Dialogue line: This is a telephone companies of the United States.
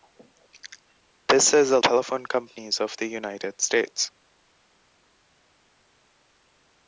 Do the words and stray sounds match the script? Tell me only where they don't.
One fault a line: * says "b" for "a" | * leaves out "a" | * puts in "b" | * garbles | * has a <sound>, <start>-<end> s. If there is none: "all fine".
all fine